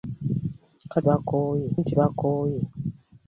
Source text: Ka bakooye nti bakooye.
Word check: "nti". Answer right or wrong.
right